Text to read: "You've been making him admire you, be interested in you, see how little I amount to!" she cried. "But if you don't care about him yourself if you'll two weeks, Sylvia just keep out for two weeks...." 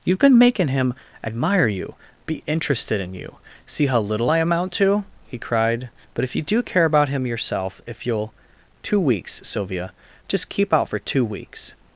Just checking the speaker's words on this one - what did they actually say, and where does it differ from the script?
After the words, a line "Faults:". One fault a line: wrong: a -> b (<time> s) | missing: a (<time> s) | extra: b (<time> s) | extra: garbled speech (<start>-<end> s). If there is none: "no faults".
"You've been making him admire you, be interested in you, see how little I amount to!" he cried. "But if you do care about him yourself if you'll two weeks, Sylvia just keep out for two weeks...."
Faults:
wrong: she -> he (5.3 s)
wrong: don't -> do (6.4 s)